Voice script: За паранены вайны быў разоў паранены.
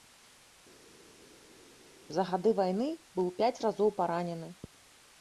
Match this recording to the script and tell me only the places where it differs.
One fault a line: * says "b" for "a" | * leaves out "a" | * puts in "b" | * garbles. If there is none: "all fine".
* says "гады" for "паранены"
* puts in "пяць"